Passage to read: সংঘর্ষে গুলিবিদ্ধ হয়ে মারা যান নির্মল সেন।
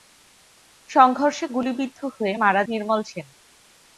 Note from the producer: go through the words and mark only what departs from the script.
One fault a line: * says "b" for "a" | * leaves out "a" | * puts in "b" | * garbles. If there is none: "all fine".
* leaves out "যান"